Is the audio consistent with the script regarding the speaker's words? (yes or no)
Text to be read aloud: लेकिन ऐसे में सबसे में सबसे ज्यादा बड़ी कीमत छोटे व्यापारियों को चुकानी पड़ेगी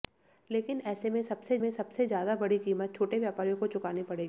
yes